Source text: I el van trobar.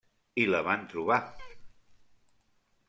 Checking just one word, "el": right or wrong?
wrong